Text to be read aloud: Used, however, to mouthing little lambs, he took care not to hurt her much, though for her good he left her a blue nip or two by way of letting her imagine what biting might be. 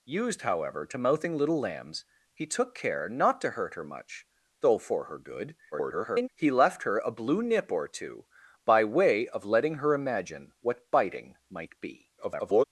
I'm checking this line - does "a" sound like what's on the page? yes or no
yes